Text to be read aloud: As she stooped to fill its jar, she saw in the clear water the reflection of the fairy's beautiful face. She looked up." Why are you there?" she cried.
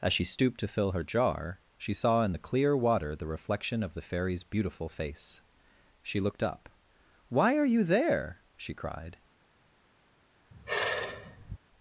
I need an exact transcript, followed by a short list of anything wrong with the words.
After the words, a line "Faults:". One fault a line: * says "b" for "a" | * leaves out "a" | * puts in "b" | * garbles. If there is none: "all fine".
As she stooped to fill her jar, she saw in the clear water the reflection of the fairy's beautiful face. She looked up." Why are you there?" she cried.
Faults:
* says "her" for "its"